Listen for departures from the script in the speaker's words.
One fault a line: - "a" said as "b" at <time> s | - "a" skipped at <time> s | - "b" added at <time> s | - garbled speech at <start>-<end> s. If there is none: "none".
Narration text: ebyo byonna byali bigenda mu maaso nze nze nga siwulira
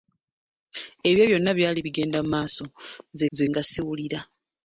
none